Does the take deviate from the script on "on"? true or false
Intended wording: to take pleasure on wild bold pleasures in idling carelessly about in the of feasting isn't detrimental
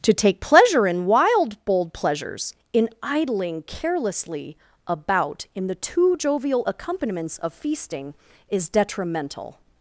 true